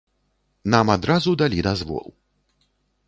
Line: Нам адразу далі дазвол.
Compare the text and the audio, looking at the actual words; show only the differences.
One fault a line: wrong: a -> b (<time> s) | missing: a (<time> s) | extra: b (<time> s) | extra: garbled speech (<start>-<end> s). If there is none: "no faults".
no faults